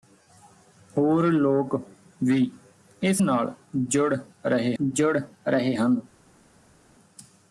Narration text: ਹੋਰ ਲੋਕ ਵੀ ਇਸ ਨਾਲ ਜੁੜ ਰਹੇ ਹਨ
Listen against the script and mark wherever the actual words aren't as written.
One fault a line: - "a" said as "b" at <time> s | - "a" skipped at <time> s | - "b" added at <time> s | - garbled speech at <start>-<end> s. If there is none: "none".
- "ਜੁੜ ਰਹੇ" added at 4.8 s